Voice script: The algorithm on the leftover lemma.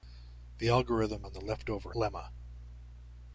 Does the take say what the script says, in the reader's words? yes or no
yes